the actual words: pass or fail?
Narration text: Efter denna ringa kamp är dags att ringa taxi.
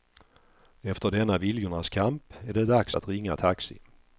fail